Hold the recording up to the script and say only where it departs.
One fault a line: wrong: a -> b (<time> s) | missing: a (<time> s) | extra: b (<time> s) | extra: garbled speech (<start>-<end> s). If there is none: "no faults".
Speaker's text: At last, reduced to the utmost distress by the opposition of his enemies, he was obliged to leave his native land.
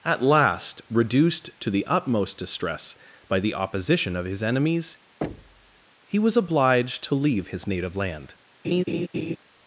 no faults